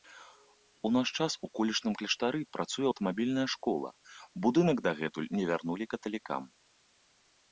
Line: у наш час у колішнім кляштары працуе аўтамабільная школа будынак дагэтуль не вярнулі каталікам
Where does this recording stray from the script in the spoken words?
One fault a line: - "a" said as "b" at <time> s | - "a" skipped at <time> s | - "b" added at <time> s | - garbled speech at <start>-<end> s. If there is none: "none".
none